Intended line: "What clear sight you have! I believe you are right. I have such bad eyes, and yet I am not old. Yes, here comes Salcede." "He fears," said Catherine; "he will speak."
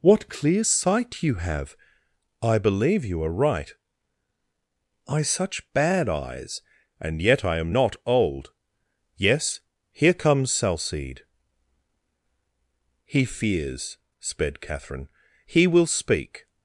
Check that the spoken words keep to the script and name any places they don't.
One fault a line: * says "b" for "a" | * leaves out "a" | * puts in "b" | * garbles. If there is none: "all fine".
* leaves out "have"
* says "sped" for "said"